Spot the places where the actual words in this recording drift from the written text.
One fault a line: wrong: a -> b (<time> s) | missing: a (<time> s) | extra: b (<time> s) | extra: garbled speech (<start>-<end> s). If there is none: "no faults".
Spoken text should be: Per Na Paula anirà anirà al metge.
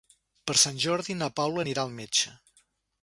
extra: Sant Jordi (0.6 s)
missing: anirà (1.9 s)